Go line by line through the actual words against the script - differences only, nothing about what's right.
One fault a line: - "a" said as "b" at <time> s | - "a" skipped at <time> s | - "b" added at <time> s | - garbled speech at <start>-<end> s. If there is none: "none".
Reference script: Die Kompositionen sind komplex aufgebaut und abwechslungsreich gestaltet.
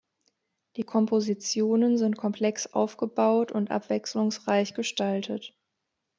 none